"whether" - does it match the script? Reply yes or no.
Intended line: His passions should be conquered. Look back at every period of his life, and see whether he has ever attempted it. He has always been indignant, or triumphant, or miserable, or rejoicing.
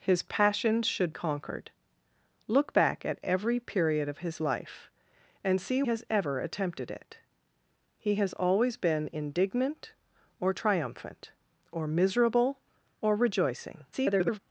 no